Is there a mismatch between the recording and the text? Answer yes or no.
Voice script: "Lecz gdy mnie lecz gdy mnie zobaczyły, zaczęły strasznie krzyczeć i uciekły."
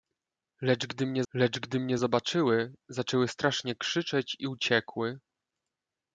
no